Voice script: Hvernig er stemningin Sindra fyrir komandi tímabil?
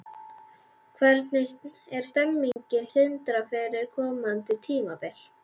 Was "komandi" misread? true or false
false